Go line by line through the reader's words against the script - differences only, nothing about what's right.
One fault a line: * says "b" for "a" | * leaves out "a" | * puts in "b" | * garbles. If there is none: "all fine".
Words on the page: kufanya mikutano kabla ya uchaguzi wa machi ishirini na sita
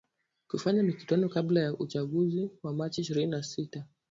all fine